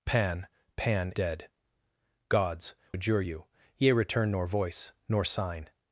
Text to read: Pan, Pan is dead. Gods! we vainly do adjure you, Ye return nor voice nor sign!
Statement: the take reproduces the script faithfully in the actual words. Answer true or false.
false